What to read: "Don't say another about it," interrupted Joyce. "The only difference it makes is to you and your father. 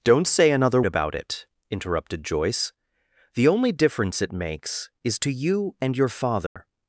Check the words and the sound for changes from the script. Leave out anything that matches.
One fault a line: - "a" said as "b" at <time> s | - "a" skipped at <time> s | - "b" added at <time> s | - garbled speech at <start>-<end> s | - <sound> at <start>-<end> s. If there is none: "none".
- dropout at 6.5-6.6 s